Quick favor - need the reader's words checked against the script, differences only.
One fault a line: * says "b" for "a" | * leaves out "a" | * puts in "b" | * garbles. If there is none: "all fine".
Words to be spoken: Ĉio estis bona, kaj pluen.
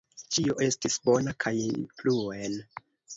all fine